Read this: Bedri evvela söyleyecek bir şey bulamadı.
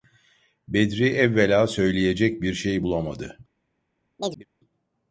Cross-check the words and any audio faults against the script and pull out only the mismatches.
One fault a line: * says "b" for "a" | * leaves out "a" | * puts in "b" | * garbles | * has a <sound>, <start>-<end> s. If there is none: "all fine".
* has a chirp, 4.2-4.5 s